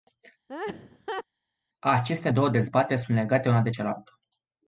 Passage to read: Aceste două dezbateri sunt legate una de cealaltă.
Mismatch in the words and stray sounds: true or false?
true